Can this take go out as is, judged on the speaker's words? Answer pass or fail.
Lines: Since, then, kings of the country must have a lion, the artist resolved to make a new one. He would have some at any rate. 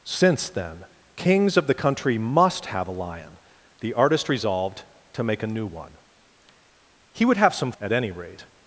pass